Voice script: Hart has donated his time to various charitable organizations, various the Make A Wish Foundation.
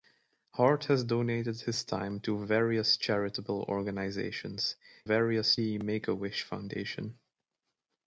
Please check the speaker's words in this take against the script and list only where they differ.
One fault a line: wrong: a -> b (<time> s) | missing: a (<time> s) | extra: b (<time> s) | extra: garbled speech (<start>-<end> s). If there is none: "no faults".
no faults